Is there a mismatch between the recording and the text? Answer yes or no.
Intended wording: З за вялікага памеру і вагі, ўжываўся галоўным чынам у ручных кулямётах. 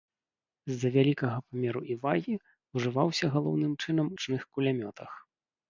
yes